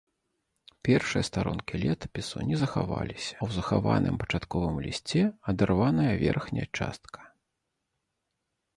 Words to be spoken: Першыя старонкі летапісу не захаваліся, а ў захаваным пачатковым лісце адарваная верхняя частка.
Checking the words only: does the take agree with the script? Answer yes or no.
no